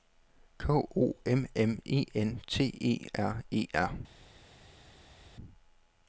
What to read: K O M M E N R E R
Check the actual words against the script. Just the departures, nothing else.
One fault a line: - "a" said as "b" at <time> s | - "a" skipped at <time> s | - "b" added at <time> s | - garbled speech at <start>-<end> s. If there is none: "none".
- "T E" added at 2.5 s